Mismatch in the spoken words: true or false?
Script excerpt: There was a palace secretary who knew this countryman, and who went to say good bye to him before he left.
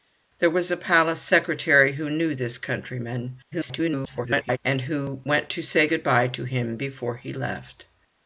true